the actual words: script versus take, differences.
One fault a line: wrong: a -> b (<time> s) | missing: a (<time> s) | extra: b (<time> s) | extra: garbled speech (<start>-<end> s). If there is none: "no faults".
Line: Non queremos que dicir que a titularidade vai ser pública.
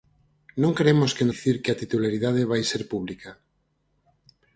no faults